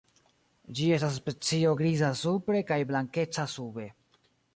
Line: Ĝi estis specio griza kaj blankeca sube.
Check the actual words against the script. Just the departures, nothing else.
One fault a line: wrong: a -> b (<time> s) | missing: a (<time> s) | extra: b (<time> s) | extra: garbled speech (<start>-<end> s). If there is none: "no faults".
wrong: estis -> estas (0.9 s)
extra: supre (2.2 s)